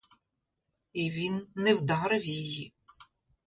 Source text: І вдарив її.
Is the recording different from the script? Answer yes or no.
yes